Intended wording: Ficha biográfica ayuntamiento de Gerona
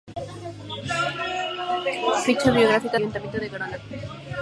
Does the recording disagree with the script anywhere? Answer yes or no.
no